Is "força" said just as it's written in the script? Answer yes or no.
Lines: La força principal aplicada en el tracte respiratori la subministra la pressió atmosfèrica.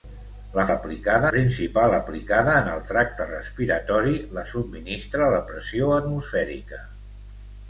no